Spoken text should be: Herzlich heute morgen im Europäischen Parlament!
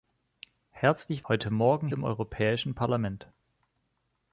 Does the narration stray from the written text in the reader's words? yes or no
no